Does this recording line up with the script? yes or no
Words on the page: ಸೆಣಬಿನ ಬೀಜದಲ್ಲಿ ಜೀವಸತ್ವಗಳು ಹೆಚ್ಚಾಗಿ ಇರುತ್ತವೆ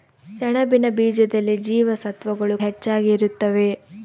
yes